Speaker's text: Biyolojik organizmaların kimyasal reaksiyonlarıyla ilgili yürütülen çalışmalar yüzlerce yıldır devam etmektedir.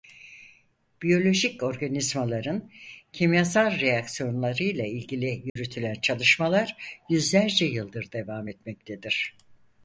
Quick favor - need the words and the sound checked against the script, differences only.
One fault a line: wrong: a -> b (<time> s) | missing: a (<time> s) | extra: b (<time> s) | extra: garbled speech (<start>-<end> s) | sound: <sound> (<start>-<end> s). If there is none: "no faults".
sound: dropout (5.5-5.6 s)